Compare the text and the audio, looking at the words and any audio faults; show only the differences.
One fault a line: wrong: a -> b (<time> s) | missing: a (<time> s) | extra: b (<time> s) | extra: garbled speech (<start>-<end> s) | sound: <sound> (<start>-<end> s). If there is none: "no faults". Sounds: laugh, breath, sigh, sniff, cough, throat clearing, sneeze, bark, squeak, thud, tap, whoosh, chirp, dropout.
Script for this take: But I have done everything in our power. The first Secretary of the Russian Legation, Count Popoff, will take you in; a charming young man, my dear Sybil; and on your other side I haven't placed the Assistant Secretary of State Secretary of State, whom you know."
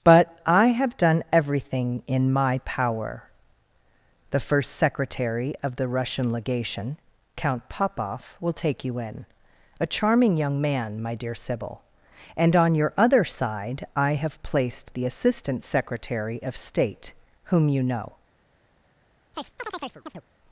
wrong: our -> my (2.3 s)
wrong: haven't -> have (14.1 s)
missing: Secretary of State (17.2 s)
sound: chirp (19.3-20.2 s)